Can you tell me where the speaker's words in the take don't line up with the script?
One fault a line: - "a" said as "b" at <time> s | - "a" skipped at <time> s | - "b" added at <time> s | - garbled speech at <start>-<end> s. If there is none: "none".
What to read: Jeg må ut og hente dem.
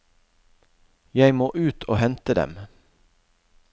none